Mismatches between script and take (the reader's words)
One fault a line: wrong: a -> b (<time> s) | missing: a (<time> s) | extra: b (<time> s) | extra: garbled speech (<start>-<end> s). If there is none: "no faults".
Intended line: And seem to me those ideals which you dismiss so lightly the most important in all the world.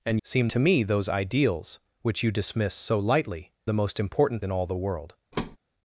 no faults